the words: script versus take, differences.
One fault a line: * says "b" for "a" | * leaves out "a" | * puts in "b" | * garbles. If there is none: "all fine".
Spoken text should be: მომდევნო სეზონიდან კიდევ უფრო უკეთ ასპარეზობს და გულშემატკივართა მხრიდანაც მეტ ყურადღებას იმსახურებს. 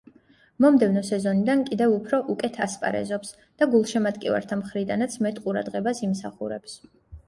all fine